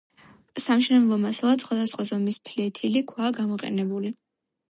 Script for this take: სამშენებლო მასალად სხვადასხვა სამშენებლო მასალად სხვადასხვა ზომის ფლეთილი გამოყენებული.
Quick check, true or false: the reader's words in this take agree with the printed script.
false